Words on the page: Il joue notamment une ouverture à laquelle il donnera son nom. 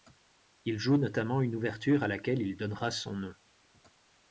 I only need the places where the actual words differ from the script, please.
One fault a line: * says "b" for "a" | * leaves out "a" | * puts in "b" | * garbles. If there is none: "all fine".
all fine